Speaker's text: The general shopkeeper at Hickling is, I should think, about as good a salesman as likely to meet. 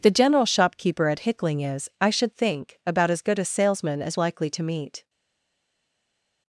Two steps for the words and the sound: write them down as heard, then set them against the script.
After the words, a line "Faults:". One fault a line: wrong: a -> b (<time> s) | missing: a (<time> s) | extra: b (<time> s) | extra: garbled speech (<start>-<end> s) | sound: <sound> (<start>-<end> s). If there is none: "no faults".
The general shopkeeper at Hickling is, I should think, about as good a salesman as likely to meet.
Faults:
no faults